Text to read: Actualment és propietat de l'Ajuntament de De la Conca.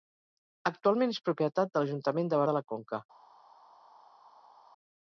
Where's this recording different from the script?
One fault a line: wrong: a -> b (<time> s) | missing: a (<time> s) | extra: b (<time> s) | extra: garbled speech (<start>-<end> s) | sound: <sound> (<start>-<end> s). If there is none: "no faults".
no faults